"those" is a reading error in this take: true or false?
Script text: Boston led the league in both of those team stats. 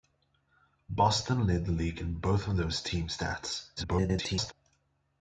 false